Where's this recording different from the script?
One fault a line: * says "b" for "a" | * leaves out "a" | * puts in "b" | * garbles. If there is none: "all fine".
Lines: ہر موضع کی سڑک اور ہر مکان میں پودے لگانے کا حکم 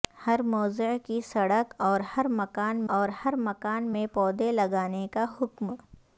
* puts in "اور ہر مکان"